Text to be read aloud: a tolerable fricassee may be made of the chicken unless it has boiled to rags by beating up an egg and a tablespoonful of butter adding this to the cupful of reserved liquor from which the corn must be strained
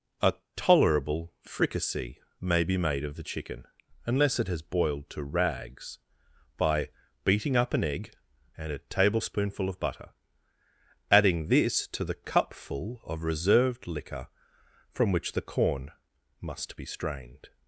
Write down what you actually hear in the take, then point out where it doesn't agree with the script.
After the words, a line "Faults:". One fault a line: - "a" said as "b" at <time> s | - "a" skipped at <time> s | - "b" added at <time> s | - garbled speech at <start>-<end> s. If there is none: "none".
a tolerable fricassee may be made of the chicken unless it has boiled to rags by beating up an egg and a tablespoonful of butter adding this to the cupful of reserved liquor from which the corn must be strained
Faults:
none